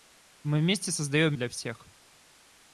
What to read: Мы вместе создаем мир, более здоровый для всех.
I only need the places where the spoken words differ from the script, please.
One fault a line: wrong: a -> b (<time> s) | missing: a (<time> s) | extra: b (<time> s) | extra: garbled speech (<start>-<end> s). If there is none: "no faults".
missing: мир более здоровый (1.4 s)